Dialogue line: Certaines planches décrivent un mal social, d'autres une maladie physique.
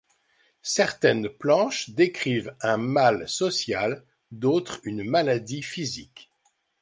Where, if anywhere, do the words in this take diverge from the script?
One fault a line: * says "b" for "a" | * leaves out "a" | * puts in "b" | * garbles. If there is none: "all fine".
all fine